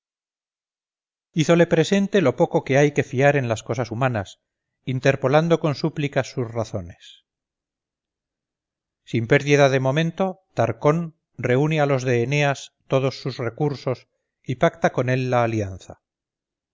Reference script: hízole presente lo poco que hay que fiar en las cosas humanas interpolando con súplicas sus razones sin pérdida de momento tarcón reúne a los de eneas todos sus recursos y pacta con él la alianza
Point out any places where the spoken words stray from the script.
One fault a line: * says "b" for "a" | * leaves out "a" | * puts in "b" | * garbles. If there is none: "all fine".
all fine